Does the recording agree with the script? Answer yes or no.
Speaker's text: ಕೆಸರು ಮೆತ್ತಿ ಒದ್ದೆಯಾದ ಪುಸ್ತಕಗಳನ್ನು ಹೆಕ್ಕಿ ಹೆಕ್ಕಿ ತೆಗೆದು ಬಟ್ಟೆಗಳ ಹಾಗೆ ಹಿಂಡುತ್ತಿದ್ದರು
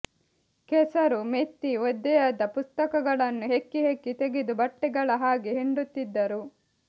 yes